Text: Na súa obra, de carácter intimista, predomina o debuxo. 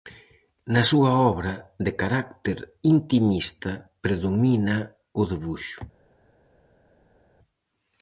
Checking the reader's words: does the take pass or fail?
pass